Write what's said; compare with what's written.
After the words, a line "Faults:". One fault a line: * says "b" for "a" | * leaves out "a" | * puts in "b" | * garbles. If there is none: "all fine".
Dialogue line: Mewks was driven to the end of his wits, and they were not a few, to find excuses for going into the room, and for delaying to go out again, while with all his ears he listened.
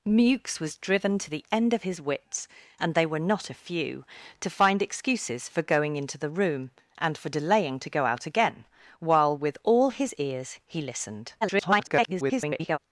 Mewks was driven to the end of his wits, and they were not a few, to find excuses for going into the room, and for delaying to go out again, while with all his ears he listened. [garbled]
Faults:
* garbles